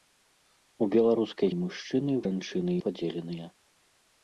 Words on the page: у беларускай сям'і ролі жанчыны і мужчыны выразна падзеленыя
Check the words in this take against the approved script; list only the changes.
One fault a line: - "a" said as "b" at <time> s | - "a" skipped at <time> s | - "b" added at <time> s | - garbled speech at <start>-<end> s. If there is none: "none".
- "сям'і ролі жанчыны" skipped at 1.5 s
- "выразна" said as "жанчыны" at 2.3 s